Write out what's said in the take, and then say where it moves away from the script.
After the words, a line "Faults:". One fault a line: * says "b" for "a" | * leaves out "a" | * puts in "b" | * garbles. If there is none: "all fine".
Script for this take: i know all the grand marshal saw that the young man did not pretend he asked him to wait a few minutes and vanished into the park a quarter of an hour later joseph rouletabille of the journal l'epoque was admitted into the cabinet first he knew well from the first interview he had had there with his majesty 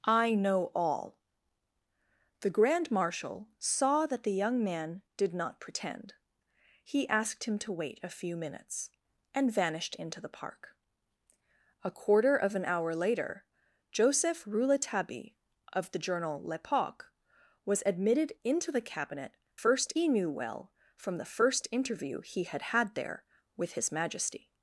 i know all the grand marshal saw that the young man did not pretend he asked him to wait a few minutes and vanished into the park a quarter of an hour later joseph rouletabille of the journal l'epoque was admitted into the cabinet first he knew well from the first interview he had had there with his majesty
Faults:
all fine